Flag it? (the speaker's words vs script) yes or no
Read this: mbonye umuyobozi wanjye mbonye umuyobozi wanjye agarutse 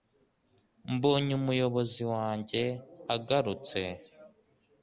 yes